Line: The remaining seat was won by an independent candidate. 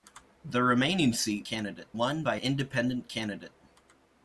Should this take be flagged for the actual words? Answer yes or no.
yes